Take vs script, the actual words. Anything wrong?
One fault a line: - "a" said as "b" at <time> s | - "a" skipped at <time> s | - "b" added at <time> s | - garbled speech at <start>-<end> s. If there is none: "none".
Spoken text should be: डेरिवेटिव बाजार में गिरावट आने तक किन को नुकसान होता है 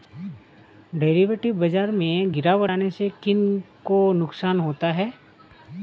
- "तक" said as "से" at 2.9 s